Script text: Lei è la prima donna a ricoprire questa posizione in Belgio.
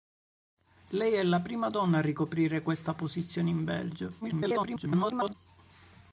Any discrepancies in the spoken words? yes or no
yes